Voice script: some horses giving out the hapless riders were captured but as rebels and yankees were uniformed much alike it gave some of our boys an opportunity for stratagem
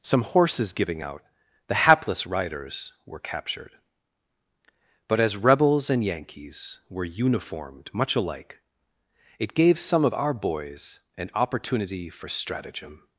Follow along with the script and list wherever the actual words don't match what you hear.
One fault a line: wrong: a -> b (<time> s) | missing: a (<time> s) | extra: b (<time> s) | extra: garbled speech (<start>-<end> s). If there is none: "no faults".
no faults